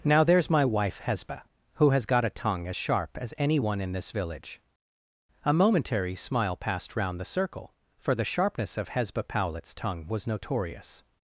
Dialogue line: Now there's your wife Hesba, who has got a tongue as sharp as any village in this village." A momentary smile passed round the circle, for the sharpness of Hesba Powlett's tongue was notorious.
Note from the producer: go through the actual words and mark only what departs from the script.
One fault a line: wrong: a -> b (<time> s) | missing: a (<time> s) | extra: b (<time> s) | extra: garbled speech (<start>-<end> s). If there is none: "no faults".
wrong: your -> my (0.5 s)
wrong: village -> one (3.6 s)